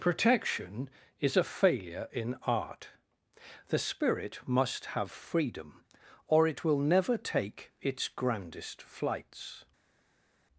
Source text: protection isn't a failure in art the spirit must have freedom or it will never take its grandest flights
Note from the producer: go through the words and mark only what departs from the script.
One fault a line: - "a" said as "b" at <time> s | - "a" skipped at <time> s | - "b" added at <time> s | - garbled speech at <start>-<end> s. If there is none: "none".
- "isn't" said as "is" at 1.2 s